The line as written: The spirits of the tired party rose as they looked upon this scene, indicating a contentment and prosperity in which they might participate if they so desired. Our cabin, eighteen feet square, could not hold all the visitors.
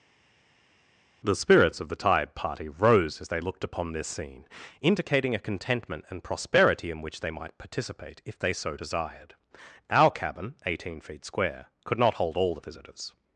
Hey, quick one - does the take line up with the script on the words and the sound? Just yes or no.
no